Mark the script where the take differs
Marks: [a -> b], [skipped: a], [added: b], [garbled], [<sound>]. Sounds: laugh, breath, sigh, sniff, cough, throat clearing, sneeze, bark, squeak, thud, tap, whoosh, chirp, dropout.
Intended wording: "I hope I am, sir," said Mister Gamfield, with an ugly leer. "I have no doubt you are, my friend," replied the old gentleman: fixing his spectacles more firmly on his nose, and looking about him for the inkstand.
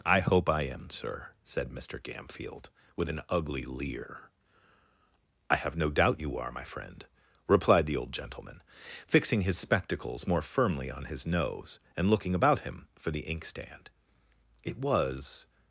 "I hope I am, sir," said Mister Gamfield, with an ugly leer. "I have no doubt you are, my friend," replied the old gentleman: fixing his spectacles more firmly on his nose, and looking about him for the inkstand. [added: It was]